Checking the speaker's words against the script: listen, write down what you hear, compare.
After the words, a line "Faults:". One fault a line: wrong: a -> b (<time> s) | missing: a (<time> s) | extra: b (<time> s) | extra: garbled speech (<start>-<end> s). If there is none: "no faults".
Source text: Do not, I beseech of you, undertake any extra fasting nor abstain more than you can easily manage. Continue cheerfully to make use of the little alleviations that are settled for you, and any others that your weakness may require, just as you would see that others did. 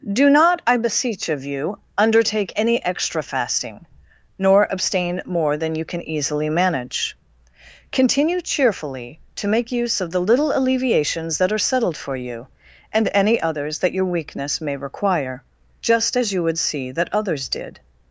Do not, I beseech of you, undertake any extra fasting nor abstain more than you can easily manage. Continue cheerfully to make use of the little alleviations that are settled for you, and any others that your weakness may require, just as you would see that others did.
Faults:
no faults